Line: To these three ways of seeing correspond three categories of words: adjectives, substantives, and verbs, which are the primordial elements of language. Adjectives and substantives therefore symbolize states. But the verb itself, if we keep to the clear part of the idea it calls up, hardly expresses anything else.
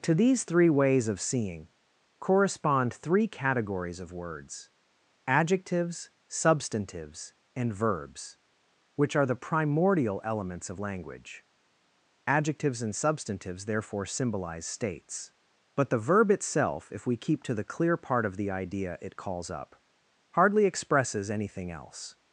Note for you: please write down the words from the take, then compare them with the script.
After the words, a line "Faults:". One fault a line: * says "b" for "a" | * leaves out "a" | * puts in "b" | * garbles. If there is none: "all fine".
To these three ways of seeing correspond three categories of words: adjectives, substantives, and verbs, which are the primordial elements of language. Adjectives and substantives therefore symbolize states. But the verb itself, if we keep to the clear part of the idea it calls up, hardly expresses anything else.
Faults:
all fine